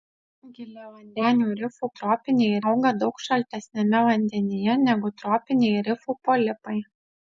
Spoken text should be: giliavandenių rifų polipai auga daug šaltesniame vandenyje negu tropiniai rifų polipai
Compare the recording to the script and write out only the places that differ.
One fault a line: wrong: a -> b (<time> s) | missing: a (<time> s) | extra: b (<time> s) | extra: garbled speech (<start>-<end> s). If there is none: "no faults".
wrong: polipai -> tropiniai (2.0 s)